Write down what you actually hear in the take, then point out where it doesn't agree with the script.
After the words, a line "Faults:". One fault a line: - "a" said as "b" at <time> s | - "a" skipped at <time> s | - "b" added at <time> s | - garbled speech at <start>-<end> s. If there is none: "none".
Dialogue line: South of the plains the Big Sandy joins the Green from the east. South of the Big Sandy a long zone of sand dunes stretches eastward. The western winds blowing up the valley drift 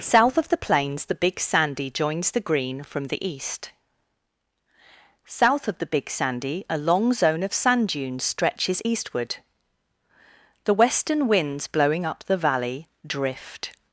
South of the plains the Big Sandy joins the Green from the east. South of the Big Sandy a long zone of sand dunes stretches eastward. The western winds blowing up the valley drift
Faults:
none